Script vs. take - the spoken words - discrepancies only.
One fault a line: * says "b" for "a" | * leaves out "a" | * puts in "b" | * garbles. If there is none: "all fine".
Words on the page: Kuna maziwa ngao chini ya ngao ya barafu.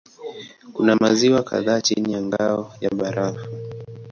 * says "kadhaa" for "ngao"